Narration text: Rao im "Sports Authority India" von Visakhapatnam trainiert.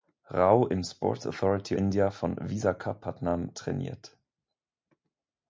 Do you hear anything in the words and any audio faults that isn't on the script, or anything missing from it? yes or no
no